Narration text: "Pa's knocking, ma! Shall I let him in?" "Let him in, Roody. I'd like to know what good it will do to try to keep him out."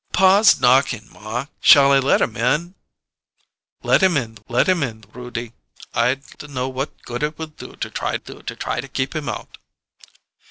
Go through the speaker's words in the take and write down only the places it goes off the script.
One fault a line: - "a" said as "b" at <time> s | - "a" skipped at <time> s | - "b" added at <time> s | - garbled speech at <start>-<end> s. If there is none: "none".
- "let him in" added at 4.5 s
- "like" skipped at 6.3 s
- "do to try" added at 8.1 s